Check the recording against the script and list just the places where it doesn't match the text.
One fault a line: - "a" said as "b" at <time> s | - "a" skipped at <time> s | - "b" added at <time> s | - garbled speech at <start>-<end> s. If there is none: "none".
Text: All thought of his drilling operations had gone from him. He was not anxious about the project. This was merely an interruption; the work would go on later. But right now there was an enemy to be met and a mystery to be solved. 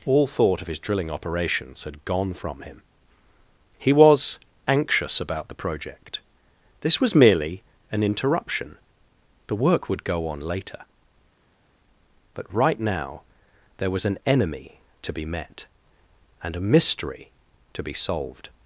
- "not" skipped at 4.4 s